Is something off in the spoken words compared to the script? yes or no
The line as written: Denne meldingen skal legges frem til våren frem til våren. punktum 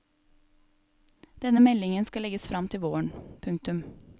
yes